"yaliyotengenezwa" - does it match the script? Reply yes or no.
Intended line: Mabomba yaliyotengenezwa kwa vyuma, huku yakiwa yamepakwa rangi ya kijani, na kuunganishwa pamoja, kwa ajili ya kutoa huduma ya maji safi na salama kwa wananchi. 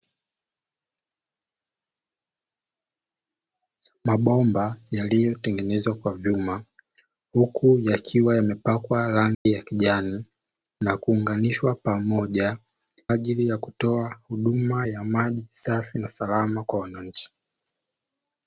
yes